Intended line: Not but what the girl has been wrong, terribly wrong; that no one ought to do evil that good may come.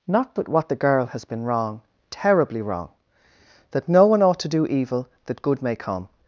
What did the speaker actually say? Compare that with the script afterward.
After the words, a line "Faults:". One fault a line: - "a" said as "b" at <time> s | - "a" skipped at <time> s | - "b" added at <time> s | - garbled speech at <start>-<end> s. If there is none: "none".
Not but what the girl has been wrong, terribly wrong; that no one ought to do evil that good may come.
Faults:
none